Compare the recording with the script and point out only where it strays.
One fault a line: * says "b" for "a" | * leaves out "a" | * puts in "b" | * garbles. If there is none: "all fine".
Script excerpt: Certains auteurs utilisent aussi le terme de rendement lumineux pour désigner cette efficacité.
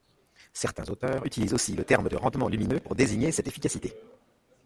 all fine